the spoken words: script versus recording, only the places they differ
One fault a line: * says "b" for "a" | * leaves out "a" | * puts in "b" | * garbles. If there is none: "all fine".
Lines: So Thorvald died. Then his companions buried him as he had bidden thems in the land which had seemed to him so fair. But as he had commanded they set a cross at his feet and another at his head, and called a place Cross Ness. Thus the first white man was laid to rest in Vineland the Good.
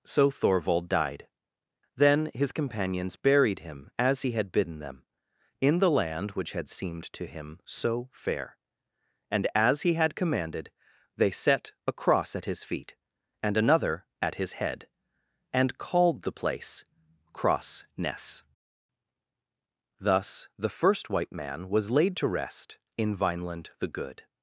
* says "them" for "thems"
* says "And" for "But"
* says "the" for "a"